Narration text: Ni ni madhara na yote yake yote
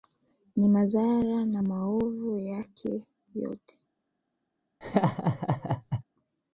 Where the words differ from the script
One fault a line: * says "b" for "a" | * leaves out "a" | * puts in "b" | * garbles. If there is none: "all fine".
* leaves out "ni"
* says "maovu" for "yote"